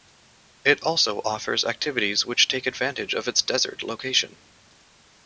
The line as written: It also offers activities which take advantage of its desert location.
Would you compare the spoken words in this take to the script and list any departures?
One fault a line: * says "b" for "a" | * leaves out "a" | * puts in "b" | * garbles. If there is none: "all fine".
all fine